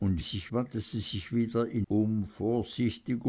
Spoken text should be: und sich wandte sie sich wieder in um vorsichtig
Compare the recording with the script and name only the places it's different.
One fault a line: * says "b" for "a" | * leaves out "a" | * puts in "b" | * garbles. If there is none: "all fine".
all fine